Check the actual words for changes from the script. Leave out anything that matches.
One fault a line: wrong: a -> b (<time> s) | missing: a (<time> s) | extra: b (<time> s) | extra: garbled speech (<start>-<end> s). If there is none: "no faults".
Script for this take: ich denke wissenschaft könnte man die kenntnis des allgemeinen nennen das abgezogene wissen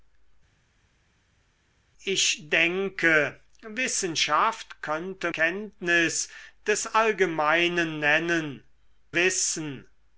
missing: man die (5.3 s)
missing: das abgezogene (8.6 s)